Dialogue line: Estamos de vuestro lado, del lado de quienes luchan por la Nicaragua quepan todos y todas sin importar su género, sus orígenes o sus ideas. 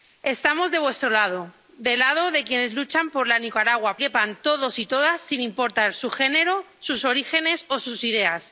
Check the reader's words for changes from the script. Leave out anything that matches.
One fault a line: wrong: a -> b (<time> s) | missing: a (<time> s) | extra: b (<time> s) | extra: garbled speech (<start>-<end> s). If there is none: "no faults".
no faults